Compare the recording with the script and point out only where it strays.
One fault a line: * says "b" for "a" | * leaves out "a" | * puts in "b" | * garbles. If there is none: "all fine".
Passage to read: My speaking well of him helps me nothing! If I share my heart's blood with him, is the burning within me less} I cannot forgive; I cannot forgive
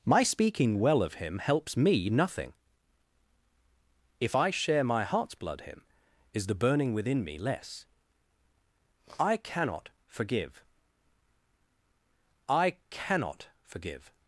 * leaves out "with"